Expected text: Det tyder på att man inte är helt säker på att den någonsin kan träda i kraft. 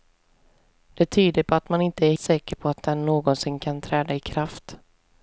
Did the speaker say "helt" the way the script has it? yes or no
no